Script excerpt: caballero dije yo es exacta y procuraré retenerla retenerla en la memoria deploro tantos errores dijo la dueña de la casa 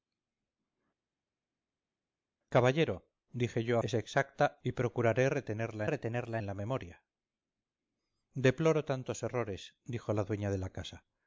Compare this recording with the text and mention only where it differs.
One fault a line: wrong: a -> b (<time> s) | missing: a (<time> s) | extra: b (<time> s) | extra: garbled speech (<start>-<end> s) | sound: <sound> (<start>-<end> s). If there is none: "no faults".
no faults